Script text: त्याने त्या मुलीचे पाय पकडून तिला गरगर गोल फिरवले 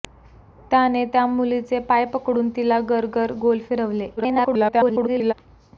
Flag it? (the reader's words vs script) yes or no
yes